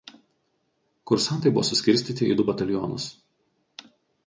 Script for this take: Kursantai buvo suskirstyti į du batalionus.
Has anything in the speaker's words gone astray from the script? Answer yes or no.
no